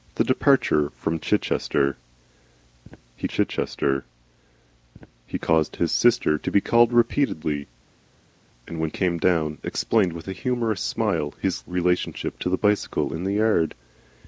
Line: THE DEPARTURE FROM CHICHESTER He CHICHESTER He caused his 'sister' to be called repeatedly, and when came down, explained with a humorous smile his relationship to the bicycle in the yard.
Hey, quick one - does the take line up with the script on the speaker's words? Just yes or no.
yes